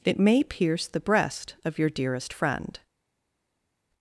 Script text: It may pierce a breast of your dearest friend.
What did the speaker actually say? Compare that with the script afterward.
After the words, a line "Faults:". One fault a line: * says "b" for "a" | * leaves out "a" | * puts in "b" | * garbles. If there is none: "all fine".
It may pierce the breast of your dearest friend.
Faults:
* says "the" for "a"